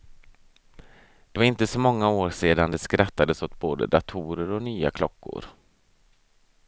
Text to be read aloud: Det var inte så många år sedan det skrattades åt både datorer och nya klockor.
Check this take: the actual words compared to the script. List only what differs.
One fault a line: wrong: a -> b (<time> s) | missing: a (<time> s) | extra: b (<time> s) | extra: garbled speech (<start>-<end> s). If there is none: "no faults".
no faults